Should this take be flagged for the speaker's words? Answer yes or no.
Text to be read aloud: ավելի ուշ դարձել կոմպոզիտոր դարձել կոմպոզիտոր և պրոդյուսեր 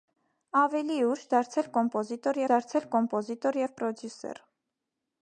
no